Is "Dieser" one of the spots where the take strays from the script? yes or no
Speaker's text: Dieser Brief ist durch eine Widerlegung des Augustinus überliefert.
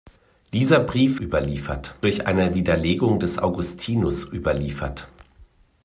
no